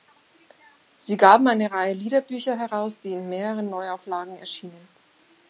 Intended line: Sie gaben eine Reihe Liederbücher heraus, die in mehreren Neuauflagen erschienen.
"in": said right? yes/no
yes